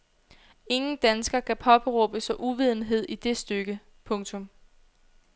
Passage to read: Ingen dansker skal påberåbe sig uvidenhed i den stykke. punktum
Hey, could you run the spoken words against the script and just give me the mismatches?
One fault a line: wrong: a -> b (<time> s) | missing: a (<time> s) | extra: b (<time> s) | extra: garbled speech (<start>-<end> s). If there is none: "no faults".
wrong: skal -> kan (1.4 s)
wrong: den -> det (3.1 s)